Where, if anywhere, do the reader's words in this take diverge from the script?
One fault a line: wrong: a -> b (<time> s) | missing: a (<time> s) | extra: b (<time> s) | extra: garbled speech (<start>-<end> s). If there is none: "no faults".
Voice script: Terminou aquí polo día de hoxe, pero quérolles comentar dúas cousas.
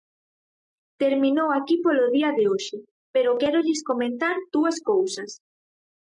no faults